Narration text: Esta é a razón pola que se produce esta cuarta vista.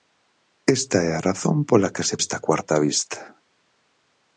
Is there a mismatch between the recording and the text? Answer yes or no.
yes